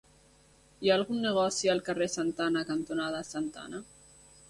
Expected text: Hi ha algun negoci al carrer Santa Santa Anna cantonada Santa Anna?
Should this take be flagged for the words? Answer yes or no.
yes